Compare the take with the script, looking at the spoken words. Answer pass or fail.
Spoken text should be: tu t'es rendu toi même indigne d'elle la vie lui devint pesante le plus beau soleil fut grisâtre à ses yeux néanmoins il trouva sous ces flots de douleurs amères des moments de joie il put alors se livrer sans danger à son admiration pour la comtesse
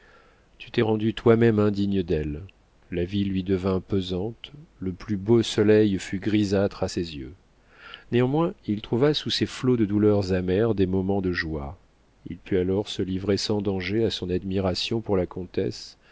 pass